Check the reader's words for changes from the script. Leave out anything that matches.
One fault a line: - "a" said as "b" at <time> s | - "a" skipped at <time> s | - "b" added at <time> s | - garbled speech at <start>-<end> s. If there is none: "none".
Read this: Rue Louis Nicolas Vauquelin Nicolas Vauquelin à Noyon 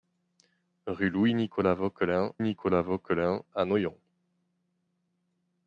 none